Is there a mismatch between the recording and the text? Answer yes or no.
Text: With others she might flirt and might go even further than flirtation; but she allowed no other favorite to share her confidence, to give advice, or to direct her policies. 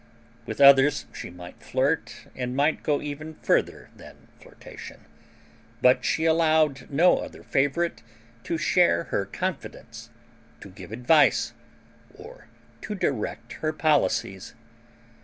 no